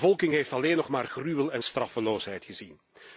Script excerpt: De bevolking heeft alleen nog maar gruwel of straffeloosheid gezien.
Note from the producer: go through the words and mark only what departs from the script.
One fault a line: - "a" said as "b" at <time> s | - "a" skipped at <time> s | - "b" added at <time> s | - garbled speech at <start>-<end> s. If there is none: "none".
- "of" said as "en" at 1.5 s